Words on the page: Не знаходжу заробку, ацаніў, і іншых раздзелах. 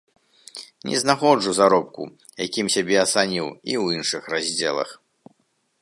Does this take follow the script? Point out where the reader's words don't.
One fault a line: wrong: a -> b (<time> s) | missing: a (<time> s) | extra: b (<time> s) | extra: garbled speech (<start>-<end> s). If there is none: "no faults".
extra: якім сябе (2.4 s)
extra: ў (3.8 s)